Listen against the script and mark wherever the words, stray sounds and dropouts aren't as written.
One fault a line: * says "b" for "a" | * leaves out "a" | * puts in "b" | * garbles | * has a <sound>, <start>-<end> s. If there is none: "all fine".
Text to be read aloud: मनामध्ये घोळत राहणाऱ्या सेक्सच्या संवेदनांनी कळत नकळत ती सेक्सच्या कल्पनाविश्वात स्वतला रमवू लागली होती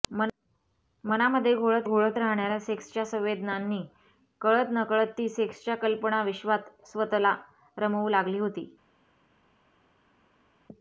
* puts in "घोळत"